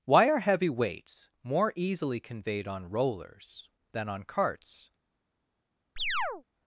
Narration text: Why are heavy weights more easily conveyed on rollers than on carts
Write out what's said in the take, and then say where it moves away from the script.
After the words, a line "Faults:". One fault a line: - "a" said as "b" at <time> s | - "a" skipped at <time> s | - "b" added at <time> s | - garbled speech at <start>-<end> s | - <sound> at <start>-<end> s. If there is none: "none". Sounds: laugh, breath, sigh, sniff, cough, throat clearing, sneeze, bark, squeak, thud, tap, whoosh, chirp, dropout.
Why are heavy weights more easily conveyed on rollers than on carts
Faults:
- chirp at 6.0-6.4 s